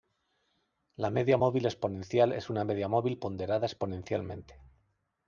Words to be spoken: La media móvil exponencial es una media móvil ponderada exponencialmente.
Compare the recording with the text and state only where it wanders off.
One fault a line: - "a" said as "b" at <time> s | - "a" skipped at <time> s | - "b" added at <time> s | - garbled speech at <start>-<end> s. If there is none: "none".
none